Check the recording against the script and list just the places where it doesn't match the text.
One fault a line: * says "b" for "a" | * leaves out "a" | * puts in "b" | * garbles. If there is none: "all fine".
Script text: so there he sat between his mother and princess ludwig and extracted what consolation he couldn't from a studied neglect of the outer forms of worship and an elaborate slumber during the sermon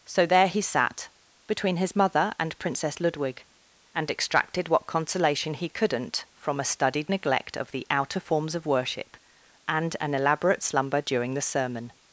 all fine